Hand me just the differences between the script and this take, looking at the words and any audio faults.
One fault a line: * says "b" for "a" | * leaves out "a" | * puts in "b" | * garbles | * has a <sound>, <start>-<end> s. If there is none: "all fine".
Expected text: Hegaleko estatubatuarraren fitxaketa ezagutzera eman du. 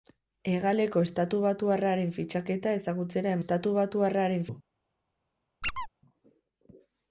* says "estatubatuarraren" for "eman"
* has a squeak, 5.6-5.9 s